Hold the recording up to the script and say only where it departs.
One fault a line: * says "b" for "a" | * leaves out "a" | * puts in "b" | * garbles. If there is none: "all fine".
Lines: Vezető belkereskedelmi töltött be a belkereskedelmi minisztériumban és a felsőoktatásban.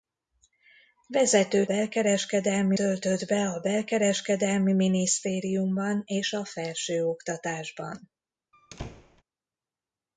all fine